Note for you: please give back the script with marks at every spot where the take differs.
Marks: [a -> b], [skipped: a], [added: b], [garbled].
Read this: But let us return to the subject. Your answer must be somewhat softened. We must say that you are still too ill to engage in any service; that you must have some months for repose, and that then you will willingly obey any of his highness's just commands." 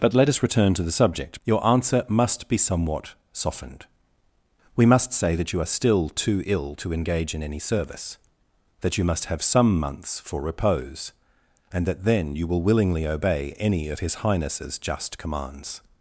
But let us return to the subject. Your answer must be somewhat softened. We must say that you are still too ill to engage in any service; that you must have some months for repose, and that then you will willingly obey any of his highness's just commands."